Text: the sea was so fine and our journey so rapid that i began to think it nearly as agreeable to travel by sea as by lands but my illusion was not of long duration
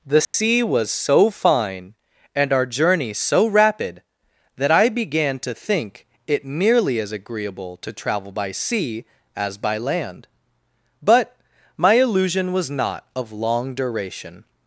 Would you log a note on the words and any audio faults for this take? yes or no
yes